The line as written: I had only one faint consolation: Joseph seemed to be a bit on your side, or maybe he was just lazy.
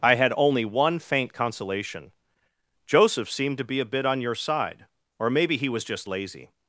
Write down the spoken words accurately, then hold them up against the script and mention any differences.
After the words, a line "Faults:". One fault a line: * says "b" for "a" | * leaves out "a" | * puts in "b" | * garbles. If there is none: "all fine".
I had only one faint consolation: Joseph seemed to be a bit on your side, or maybe he was just lazy.
Faults:
all fine